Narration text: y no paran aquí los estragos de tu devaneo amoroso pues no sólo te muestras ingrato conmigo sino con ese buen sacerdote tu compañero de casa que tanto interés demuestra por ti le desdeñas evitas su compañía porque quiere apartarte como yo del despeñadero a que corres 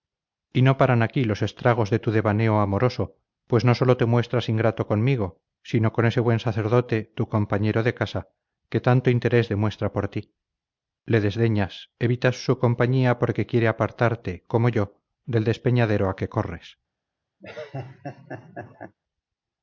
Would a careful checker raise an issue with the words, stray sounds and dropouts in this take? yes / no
yes